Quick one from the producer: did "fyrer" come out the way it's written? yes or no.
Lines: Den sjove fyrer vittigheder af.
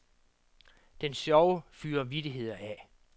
yes